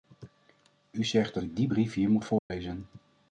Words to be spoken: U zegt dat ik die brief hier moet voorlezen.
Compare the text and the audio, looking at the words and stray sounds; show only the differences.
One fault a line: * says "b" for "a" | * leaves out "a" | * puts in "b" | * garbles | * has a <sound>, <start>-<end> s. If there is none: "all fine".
* has a dropout, 2.4-2.5 s